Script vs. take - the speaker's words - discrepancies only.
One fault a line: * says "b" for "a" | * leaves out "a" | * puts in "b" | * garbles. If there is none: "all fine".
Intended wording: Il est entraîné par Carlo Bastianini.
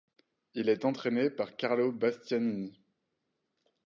all fine